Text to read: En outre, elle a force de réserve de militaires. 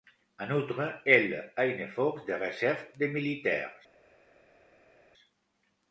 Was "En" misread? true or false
false